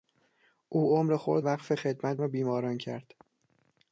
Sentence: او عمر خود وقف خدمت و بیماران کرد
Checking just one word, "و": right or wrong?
right